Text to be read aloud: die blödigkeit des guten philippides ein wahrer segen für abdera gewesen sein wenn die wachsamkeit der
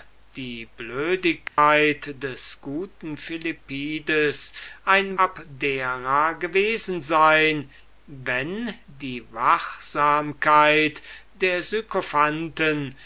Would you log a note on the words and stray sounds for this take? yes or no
yes